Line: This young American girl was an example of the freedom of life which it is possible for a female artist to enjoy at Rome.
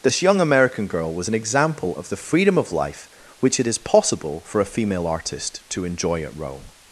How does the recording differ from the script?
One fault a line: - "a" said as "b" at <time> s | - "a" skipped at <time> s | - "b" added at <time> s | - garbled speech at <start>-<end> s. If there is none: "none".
none